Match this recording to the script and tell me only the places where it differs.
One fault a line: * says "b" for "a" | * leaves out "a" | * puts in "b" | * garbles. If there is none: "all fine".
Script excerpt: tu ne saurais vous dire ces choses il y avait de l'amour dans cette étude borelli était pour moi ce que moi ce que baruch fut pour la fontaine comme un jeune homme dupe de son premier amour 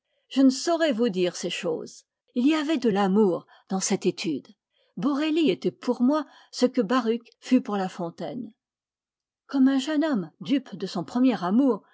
* says "je" for "tu"
* leaves out "moi ce que"